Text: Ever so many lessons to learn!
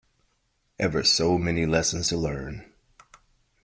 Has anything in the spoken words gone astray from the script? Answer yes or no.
no